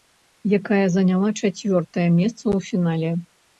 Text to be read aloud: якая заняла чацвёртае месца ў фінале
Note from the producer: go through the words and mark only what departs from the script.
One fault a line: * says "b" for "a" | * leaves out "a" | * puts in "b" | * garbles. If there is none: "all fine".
all fine